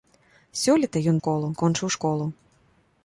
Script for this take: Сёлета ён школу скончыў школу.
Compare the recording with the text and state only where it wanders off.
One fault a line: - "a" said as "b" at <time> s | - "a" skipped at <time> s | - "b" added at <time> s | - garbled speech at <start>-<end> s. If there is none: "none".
none